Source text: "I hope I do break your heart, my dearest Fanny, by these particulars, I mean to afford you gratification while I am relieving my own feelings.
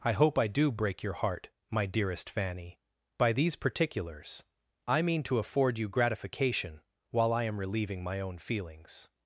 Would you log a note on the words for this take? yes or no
no